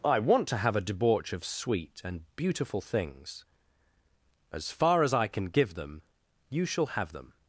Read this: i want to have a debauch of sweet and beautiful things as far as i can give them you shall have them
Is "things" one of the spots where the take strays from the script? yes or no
no